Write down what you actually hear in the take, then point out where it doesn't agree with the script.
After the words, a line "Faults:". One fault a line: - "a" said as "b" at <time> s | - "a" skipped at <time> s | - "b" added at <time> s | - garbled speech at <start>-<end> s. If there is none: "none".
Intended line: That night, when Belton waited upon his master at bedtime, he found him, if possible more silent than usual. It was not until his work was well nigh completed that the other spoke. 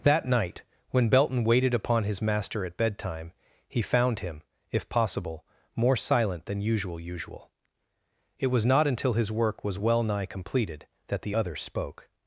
That night, when Belton waited upon his master at bedtime, he found him, if possible more silent than usual usual. It was not until his work was well nigh completed that the other spoke.
Faults:
- "usual" added at 7.0 s